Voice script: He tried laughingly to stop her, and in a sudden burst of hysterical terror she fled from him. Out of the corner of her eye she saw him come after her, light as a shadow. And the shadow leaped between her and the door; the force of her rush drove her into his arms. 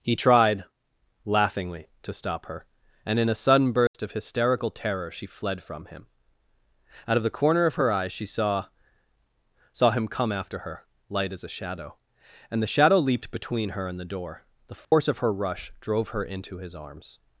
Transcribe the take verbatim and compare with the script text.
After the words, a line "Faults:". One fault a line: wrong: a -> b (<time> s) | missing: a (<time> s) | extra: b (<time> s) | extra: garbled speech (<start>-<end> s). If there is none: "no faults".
He tried laughingly to stop her, and in a sudden burst of hysterical terror she fled from him. Out of the corner of her eye she saw saw him come after her, light as a shadow. And the shadow leaped between her and the door; the force of her rush drove her into his arms.
Faults:
extra: saw (9.7 s)